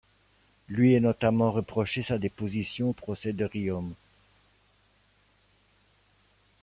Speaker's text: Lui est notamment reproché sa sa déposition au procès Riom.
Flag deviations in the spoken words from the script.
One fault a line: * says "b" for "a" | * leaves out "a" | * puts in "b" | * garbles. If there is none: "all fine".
* leaves out "sa"
* puts in "de"